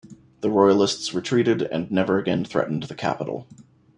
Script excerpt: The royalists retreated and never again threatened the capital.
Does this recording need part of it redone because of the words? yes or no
no